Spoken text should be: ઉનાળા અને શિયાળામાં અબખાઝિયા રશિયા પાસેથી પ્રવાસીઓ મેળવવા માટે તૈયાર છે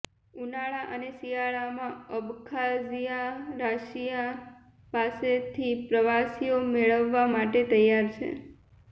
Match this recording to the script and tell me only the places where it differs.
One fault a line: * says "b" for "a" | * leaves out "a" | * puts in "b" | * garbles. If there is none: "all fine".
all fine